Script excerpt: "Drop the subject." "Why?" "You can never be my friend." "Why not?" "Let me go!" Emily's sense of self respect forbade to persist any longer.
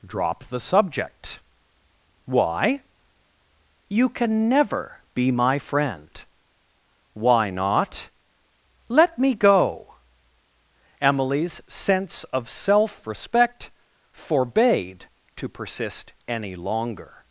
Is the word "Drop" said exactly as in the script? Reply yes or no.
yes